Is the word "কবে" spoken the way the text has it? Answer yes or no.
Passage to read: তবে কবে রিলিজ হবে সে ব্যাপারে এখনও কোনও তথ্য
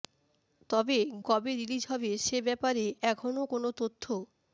yes